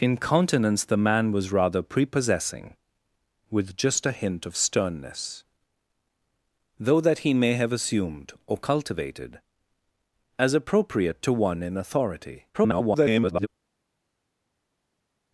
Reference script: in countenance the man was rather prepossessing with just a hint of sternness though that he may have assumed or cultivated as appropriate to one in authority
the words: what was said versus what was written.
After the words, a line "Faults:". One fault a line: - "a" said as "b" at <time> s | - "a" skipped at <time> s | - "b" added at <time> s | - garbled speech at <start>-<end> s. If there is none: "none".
in countenance the man was rather prepossessing with just a hint of sternness though that he may have assumed or cultivated as appropriate to one in authority [garbled]
Faults:
- garbled speech at 12.5-13.5 s